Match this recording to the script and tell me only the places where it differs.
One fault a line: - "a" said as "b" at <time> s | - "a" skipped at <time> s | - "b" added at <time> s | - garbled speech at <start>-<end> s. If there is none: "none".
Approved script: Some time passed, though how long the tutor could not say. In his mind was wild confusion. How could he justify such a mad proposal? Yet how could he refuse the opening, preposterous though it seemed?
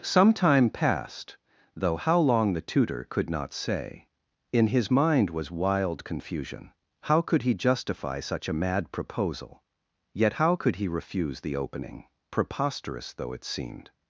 none